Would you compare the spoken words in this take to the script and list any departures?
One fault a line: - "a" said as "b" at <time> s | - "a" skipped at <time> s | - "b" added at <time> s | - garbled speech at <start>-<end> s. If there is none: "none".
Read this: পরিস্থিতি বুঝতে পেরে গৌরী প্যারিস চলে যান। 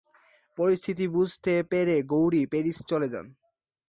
none